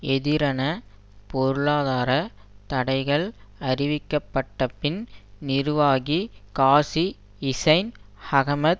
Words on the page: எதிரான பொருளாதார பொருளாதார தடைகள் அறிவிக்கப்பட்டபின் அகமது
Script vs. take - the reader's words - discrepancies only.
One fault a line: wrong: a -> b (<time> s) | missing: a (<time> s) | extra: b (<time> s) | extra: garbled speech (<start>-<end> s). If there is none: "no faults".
missing: பொருளாதார (2.1 s)
extra: நிர்வாகி காசி ஹிசைன் (5.4 s)